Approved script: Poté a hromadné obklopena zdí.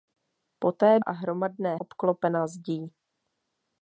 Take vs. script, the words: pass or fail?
pass